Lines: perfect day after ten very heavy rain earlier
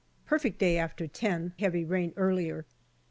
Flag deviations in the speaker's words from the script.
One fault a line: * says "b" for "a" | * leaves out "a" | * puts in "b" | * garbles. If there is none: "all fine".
* leaves out "very"